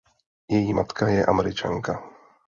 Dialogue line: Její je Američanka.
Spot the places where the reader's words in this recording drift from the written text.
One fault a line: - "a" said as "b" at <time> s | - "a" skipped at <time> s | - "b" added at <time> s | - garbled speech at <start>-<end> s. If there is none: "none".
- "matka" added at 0.7 s